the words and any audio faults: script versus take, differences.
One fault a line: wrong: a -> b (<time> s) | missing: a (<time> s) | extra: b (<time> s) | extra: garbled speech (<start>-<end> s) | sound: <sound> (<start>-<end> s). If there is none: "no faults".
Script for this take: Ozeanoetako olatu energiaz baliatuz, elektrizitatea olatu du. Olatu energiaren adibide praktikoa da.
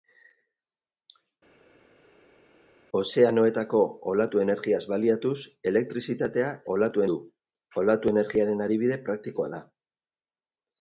no faults